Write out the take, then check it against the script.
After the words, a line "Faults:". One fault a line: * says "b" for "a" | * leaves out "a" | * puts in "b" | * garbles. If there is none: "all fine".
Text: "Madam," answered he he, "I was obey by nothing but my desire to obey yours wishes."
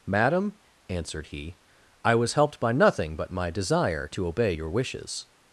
"Madam," answered he, "I was helped by nothing but my desire to obey your wishes."
Faults:
* leaves out "he"
* says "helped" for "obey"
* says "your" for "yours"